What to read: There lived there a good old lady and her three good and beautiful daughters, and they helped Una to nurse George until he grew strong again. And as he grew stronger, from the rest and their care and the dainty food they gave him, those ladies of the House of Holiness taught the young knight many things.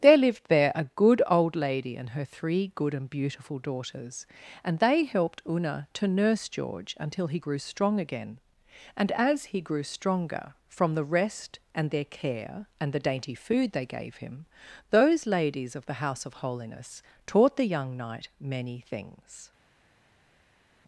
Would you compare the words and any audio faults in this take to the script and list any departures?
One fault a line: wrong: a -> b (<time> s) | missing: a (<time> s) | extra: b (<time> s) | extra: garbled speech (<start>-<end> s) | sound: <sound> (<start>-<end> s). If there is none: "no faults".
no faults